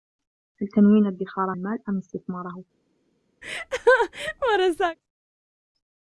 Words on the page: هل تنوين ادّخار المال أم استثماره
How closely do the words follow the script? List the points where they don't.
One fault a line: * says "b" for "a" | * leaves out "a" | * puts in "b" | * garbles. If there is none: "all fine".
all fine